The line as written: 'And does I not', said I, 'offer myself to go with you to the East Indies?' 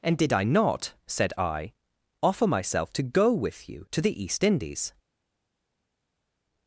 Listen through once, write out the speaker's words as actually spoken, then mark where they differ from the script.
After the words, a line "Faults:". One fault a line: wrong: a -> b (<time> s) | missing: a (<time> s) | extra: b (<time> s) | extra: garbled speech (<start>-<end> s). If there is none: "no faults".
'And did I not', said I, 'offer myself to go with you to the East Indies?'
Faults:
wrong: does -> did (0.2 s)